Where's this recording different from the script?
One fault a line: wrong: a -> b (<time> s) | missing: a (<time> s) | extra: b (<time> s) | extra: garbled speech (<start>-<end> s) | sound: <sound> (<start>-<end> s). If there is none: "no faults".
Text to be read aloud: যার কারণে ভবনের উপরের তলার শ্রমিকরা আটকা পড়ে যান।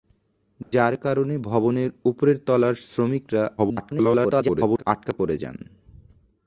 sound: dropout (0.6-0.7 s)
extra: garbled speech (3.6-4.8 s)